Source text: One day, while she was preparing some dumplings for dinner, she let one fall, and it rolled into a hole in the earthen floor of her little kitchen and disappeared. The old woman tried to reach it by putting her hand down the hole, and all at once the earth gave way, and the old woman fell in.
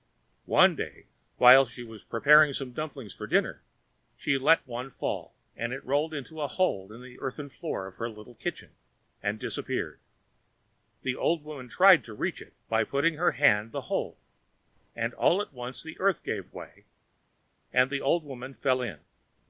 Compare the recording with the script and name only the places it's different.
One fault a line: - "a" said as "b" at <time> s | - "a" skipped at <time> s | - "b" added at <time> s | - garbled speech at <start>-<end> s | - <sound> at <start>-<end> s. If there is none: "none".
- "down" skipped at 13.7 s